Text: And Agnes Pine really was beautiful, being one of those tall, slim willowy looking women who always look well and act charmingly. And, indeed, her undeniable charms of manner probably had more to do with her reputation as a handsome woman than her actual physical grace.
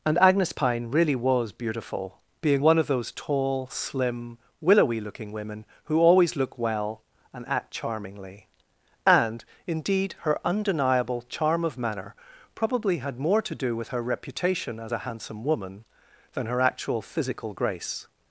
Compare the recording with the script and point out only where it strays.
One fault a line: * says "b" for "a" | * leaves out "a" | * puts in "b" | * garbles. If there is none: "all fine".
* says "charm" for "charms"